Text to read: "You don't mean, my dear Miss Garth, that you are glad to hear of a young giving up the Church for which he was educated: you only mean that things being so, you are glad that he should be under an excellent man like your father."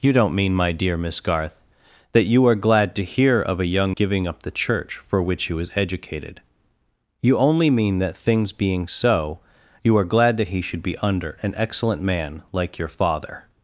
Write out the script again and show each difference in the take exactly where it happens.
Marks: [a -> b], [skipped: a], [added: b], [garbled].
"You don't mean, my dear Miss Garth, that you are glad to hear of a young giving up the Church for which he was educated: you only mean that things being so, you are glad that he should be under an excellent man like your father."